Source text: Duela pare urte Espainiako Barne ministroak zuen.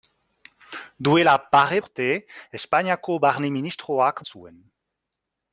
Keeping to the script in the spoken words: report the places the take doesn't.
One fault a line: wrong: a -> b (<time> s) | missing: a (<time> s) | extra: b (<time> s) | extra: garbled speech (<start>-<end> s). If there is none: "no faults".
no faults